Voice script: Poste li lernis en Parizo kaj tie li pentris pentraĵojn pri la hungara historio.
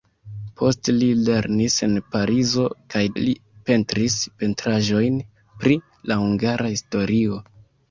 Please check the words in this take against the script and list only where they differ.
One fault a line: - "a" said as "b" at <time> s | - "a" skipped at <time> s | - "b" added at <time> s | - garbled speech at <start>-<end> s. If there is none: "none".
- "tie" skipped at 3.0 s